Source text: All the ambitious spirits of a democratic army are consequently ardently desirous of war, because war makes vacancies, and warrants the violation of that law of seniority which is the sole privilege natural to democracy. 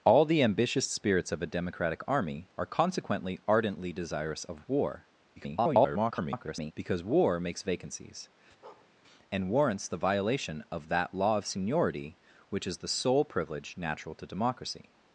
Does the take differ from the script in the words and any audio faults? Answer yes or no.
yes